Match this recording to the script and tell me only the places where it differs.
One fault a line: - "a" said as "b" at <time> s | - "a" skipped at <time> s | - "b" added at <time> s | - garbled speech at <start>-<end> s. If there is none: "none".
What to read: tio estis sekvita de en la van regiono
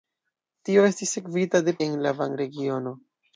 none